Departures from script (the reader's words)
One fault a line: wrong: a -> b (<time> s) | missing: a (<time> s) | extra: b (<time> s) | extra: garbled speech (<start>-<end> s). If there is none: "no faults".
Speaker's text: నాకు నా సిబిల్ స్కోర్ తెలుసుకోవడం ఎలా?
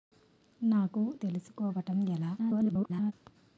missing: నా సిబిల్ స్కోర్ (1.0 s)
extra: garbled speech (2.4-3.1 s)